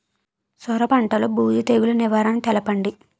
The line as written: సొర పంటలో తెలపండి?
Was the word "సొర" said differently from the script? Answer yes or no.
no